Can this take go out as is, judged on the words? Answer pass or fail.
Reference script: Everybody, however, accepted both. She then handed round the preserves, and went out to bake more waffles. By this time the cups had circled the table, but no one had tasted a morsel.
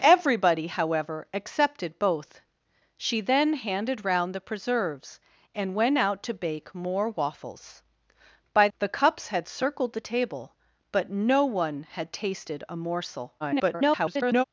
fail